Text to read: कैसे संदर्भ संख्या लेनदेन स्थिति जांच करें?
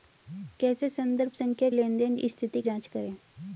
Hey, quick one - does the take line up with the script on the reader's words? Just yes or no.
yes